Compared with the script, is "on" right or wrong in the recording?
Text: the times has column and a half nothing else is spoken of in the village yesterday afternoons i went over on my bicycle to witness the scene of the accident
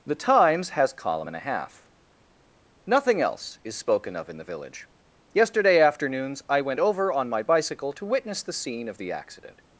right